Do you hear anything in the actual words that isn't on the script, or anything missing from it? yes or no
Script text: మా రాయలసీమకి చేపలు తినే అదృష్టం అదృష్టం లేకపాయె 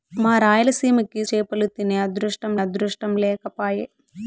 no